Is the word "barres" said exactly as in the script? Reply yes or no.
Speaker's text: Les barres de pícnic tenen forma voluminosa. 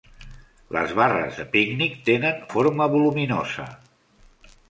yes